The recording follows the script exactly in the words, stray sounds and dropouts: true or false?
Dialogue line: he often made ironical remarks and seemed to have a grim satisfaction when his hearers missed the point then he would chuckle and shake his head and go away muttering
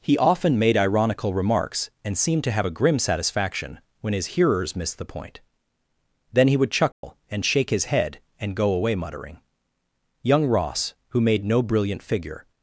false